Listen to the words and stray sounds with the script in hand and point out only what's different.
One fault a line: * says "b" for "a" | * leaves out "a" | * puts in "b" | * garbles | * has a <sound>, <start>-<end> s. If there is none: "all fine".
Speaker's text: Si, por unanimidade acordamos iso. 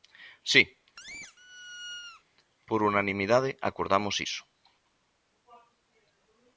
* has a squeak, 1.0-2.2 s